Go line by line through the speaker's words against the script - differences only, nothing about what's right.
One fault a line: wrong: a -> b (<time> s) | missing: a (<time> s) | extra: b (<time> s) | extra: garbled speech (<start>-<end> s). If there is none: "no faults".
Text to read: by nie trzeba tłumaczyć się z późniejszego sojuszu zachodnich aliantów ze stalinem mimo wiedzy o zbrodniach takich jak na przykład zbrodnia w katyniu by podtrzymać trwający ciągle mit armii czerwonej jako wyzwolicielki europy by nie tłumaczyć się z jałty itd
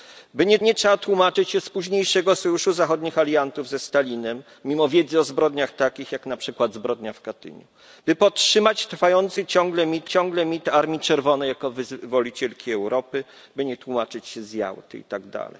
extra: nie (0.6 s)
extra: ciągle mit (10.1 s)